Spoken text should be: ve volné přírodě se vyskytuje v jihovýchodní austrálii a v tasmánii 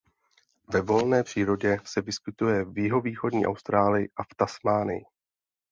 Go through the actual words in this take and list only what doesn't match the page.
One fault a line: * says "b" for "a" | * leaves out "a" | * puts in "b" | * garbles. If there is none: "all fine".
all fine